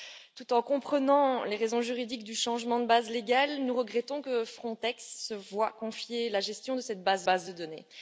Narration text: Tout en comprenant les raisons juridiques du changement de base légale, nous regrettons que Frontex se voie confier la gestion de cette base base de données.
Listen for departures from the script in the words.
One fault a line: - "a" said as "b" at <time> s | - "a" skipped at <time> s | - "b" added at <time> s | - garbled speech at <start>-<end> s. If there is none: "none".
none